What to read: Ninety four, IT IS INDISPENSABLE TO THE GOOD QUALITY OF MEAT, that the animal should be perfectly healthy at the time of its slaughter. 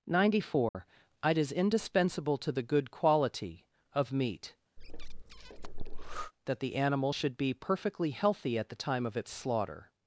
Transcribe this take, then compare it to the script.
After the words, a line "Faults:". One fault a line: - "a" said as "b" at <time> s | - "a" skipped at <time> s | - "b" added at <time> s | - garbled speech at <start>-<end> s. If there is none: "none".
Ninety four, IT IS INDISPENSABLE TO THE GOOD QUALITY OF MEAT, that the animal should be perfectly healthy at the time of its slaughter.
Faults:
none